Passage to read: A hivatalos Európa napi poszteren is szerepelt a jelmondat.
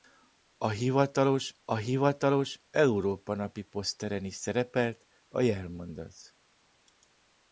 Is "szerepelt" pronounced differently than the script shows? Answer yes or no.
no